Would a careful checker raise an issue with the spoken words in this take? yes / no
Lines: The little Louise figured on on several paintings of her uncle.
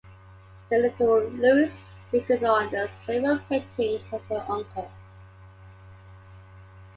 yes